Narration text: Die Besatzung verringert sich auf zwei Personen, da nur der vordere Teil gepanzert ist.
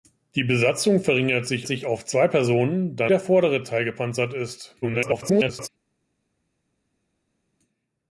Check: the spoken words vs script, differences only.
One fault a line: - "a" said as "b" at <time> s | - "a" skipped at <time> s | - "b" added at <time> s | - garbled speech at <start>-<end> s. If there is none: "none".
- "sich" added at 1.6 s
- "nur" skipped at 3.1 s
- garbled speech at 4.8-5.7 s